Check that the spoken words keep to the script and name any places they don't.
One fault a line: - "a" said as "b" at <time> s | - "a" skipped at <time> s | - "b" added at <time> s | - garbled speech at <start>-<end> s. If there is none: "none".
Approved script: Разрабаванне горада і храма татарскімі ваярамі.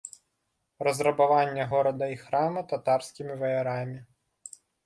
none